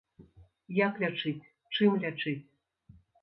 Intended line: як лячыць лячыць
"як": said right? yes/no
yes